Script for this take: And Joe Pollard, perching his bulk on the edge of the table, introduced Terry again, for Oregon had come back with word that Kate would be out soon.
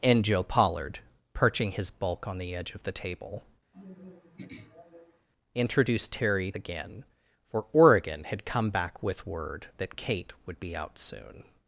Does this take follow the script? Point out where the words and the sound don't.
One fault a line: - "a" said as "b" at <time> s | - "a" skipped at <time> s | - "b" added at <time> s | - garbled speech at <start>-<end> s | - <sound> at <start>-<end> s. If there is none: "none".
- throat clearing at 3.7-5.3 s